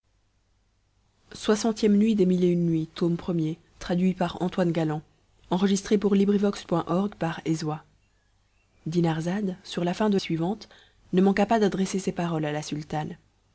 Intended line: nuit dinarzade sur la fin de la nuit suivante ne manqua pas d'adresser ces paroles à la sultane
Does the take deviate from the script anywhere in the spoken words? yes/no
yes